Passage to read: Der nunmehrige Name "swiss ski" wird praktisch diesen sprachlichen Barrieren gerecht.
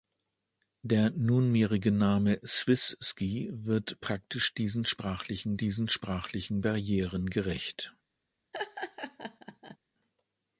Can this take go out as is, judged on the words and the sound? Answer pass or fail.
fail